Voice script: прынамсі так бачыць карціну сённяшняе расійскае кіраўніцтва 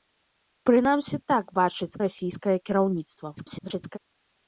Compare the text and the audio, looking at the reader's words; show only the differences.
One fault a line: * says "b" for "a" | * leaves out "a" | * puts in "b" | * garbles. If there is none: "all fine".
* leaves out "карціну сённяшняе"
* garbles